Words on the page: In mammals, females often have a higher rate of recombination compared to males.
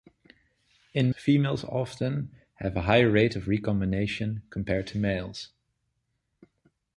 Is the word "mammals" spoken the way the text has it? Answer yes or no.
no